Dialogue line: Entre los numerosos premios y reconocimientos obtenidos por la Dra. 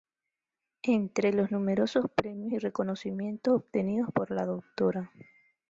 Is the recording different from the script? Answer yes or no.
no